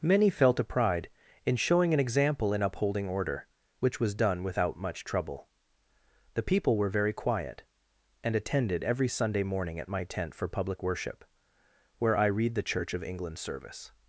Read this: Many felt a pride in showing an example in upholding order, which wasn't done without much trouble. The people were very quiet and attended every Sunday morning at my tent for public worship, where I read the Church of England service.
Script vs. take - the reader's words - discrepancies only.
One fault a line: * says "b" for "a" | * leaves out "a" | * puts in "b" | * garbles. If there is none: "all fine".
* says "was" for "wasn't"